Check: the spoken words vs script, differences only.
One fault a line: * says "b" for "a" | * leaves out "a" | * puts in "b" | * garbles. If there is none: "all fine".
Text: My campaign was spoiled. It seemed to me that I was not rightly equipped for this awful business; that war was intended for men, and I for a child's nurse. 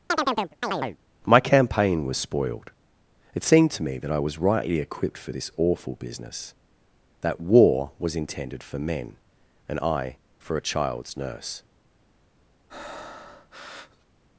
* leaves out "not"